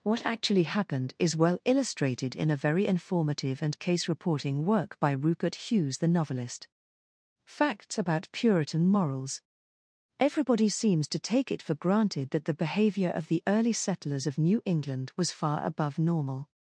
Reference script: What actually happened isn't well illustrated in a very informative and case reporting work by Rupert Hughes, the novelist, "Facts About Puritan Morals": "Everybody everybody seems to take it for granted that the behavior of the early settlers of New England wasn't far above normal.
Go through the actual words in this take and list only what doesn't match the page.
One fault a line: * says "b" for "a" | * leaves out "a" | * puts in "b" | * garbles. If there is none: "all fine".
* says "is" for "isn't"
* leaves out "everybody"
* says "was" for "wasn't"